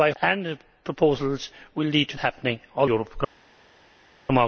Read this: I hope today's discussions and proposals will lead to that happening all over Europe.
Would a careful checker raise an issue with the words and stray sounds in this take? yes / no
yes